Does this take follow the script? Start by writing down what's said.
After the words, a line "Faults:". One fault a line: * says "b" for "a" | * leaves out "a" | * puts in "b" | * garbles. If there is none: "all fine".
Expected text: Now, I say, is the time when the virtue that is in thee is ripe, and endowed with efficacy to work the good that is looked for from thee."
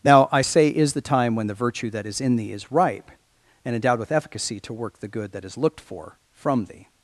Now, I say, is the time when the virtue that is in thee is ripe, and endowed with efficacy to work the good that is looked for from thee."
Faults:
all fine